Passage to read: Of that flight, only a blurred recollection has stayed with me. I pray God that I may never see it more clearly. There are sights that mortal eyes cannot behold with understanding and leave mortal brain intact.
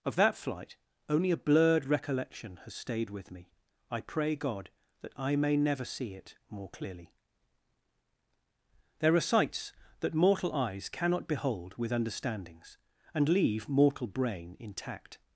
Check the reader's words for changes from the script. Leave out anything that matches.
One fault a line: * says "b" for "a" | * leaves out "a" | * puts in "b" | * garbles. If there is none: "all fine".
* says "understandings" for "understanding"